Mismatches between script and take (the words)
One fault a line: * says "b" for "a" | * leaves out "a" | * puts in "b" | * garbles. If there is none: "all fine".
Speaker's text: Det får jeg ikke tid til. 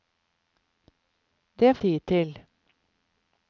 * leaves out "får jeg ikke"